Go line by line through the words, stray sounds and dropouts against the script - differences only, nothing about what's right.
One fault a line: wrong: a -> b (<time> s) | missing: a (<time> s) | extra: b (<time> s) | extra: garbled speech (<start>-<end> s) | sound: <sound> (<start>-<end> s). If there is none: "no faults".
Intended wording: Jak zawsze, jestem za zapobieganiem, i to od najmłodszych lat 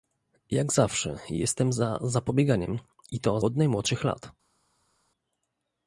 no faults